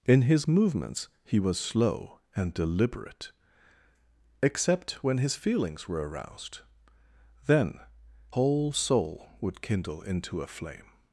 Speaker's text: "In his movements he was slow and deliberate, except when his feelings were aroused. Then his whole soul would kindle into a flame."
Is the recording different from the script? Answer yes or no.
yes